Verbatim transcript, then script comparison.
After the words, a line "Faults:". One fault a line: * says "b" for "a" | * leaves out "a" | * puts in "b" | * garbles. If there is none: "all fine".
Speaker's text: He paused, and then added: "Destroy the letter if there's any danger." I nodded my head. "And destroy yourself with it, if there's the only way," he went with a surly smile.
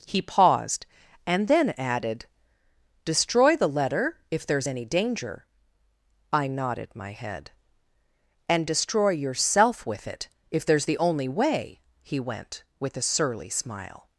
He paused, and then added: "Destroy the letter if there's any danger." I nodded my head. "And destroy yourself with it, if there's the only way," he went with a surly smile.
Faults:
all fine